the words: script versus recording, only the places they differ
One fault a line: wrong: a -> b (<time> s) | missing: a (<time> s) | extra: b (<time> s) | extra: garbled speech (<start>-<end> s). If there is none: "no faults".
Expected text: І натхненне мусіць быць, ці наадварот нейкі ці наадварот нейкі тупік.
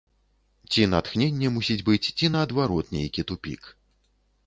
wrong: І -> Ці (0.7 s)
missing: ці наадварот нейкі (3.3 s)